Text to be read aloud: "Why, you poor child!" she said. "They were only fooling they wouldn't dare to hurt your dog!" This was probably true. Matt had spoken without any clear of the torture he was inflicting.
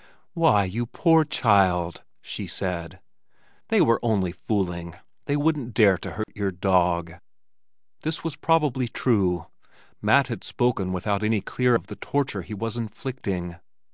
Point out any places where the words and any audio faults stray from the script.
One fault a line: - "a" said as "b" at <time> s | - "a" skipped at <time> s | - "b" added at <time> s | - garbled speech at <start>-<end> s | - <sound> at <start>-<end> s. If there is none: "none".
- dropout at 6.2-6.3 s